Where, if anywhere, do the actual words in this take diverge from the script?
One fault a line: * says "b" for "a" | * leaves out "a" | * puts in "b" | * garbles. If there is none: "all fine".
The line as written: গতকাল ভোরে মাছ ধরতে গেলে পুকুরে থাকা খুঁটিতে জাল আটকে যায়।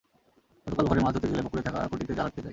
all fine